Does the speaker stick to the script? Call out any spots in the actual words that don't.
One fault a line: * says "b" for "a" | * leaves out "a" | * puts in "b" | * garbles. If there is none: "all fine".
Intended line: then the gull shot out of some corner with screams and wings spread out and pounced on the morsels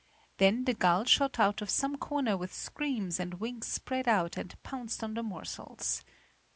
all fine